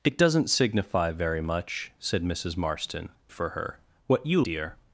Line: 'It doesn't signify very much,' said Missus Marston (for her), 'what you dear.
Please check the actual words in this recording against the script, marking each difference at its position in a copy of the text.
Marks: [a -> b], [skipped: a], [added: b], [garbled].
'It doesn't signify very much,' said Missus Marston (for her), 'what you dear.